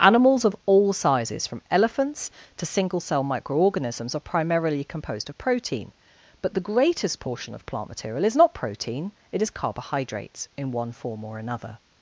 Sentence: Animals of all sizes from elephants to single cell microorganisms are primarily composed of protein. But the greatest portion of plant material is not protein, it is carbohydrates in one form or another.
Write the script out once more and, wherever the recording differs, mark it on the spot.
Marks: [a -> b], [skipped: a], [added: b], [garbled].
Animals of all sizes from elephants to single cell microorganisms are primarily composed of protein. But the greatest portion of plant material is not protein, it is carbohydrates in one form or another.